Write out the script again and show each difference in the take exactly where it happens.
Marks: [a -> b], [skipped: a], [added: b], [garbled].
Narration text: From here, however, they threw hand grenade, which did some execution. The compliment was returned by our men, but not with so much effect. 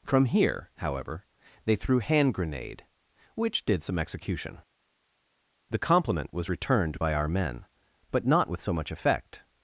From here, however, they threw hand grenade, which did some execution. The compliment was returned by our men, but not with so much effect.